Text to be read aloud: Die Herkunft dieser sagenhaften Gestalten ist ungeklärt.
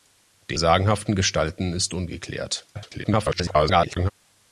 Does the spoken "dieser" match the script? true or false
false